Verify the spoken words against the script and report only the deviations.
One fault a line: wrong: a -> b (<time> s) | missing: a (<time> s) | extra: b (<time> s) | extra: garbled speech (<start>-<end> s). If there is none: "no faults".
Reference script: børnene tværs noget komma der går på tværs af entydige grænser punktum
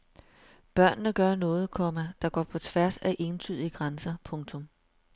wrong: tværs -> gør (1.1 s)